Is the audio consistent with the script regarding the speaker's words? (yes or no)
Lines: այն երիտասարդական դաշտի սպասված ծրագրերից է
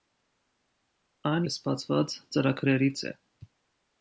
no